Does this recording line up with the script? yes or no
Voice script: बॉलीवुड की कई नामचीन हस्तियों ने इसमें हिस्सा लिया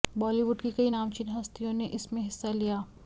yes